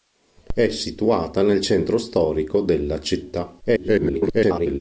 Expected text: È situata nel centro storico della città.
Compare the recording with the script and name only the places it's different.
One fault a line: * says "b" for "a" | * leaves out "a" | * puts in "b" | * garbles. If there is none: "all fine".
* garbles